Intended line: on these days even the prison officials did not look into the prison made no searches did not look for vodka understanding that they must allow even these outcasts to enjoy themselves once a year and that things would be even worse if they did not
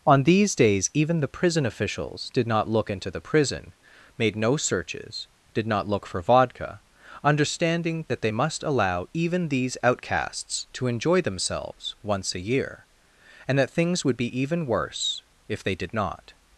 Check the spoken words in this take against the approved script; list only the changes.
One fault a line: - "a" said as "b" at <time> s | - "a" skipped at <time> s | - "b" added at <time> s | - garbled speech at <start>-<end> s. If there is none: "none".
none